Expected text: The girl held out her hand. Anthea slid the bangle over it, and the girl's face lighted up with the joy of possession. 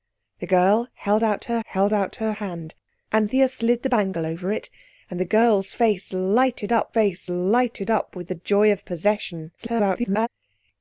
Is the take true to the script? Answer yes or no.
no